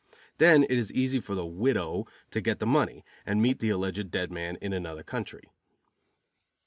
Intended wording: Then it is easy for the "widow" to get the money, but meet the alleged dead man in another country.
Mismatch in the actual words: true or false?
true